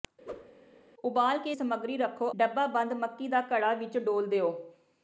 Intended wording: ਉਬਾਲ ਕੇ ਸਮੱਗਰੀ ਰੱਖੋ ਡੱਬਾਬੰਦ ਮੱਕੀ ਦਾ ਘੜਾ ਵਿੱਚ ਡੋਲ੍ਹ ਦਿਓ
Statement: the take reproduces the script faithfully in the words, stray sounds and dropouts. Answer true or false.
false